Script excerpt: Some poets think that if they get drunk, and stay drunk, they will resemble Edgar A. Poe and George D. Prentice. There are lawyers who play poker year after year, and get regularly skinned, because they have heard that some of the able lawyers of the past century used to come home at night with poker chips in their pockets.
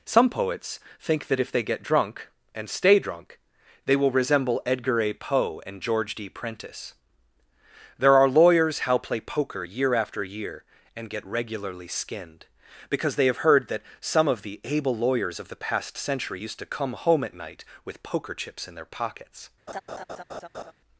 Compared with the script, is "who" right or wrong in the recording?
wrong